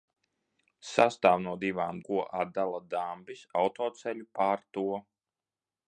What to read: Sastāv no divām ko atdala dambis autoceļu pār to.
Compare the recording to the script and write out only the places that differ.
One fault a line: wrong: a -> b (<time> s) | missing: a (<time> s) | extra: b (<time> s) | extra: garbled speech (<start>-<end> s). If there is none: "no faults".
no faults